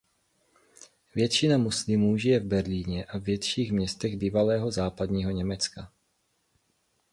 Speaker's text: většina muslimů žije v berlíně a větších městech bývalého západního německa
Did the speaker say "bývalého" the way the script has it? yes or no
yes